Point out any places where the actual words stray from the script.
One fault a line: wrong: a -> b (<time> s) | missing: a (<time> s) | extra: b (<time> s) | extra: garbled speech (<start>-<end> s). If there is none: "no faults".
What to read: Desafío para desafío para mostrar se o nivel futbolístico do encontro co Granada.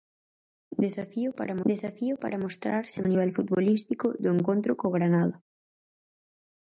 no faults